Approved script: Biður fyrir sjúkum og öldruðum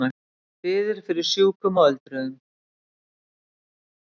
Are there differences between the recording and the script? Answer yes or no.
no